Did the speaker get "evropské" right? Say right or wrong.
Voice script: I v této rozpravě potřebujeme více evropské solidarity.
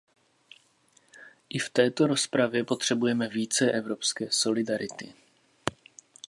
right